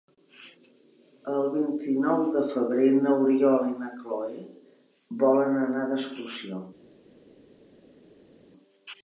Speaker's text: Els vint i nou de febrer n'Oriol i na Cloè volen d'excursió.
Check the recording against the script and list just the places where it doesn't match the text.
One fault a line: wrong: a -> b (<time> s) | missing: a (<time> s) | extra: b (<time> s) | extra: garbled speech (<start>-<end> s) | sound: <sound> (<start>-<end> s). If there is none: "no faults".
wrong: Els -> El (1.3 s)
extra: anar (5.7 s)